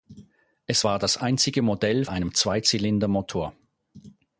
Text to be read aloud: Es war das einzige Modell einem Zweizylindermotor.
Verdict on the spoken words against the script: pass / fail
pass